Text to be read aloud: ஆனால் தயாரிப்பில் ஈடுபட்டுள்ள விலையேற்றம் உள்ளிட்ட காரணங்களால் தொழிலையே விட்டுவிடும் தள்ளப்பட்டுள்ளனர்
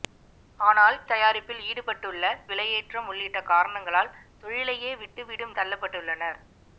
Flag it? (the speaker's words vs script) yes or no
no